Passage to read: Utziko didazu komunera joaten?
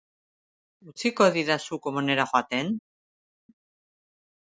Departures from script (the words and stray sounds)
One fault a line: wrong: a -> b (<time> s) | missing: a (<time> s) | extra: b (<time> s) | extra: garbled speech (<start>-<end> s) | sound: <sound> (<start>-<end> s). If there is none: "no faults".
no faults